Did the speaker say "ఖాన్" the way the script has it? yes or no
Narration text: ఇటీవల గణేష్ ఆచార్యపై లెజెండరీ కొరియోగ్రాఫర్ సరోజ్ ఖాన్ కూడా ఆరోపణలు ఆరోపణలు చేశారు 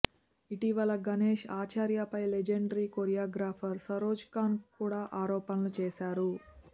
yes